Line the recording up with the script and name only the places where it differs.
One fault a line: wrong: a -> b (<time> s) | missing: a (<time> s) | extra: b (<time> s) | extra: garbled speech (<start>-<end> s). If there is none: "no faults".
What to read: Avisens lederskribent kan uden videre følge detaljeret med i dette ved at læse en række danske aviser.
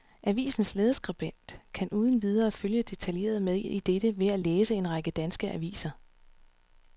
no faults